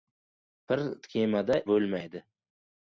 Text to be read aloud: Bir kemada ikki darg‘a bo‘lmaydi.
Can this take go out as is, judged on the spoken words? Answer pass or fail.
fail